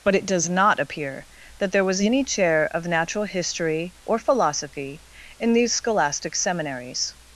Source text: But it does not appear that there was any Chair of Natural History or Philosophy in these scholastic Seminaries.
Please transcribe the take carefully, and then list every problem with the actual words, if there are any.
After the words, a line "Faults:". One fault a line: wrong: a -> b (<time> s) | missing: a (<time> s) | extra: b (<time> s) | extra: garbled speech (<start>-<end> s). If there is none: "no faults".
But it does not appear that there was any Chair of Natural History or Philosophy in these scholastic Seminaries.
Faults:
no faults